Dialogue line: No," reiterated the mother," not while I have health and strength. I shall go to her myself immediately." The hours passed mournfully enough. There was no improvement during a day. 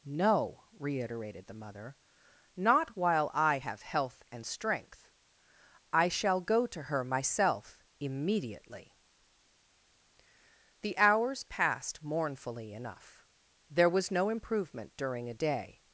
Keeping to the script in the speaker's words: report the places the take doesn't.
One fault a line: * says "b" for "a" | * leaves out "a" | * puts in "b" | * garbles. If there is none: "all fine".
all fine